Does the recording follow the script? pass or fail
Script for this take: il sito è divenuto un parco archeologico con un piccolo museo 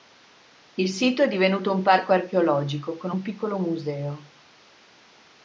pass